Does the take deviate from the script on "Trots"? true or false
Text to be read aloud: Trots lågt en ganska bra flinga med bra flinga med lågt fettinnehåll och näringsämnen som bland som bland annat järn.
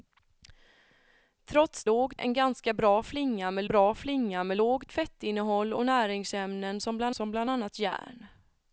false